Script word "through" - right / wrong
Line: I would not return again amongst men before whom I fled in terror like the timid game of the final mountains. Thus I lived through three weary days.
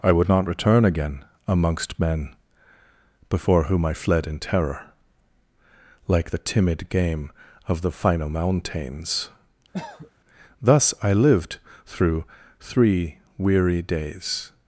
right